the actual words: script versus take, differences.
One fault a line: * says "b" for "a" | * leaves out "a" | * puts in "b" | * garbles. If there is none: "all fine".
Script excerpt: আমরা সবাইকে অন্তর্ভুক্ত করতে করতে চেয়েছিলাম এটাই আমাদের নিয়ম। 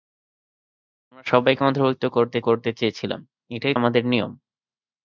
all fine